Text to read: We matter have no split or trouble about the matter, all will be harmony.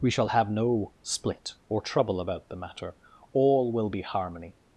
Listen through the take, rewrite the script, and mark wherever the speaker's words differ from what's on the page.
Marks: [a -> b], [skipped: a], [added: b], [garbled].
We [matter -> shall] have no split or trouble about the matter, all will be harmony.